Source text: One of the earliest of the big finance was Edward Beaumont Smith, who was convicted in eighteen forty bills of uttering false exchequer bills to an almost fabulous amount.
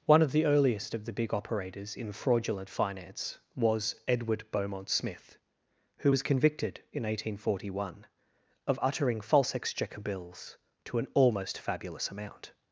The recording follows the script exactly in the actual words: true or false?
false